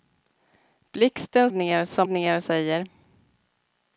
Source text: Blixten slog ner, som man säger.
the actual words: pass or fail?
fail